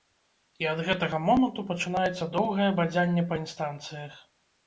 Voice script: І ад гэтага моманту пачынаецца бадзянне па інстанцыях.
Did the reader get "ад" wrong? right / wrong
right